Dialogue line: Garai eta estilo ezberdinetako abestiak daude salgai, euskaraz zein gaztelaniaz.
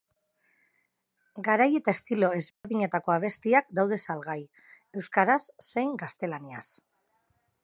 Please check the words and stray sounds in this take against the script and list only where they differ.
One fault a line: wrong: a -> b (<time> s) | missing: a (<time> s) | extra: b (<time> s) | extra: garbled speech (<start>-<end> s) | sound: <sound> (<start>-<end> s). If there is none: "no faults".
sound: dropout (2.5-2.6 s)